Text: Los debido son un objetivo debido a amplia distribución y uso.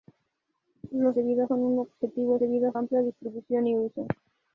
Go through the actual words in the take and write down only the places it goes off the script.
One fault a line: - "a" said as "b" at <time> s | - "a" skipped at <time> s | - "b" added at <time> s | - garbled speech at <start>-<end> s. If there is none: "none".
none